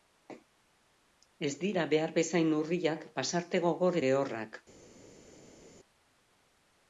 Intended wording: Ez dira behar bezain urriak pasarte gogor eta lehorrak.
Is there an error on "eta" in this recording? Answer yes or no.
yes